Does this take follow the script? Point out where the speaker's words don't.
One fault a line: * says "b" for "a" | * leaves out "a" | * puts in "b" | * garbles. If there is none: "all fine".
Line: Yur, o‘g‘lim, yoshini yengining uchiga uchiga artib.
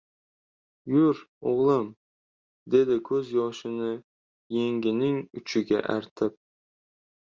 * puts in "dedi ko‘z"
* leaves out "uchiga"